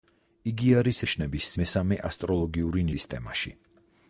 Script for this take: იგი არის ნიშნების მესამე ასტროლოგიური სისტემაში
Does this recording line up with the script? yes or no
yes